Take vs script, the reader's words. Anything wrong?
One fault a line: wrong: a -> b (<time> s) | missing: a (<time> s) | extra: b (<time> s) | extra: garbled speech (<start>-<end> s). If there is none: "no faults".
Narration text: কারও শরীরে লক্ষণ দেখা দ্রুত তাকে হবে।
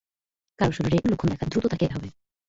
no faults